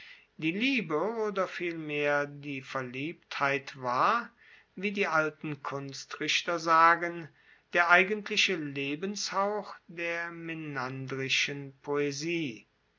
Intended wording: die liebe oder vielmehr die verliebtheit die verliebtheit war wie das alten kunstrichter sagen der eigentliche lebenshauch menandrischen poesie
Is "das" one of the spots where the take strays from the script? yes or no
yes